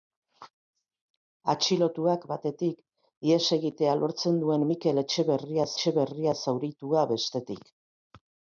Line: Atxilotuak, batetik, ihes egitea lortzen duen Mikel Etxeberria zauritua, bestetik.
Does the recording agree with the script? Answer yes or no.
no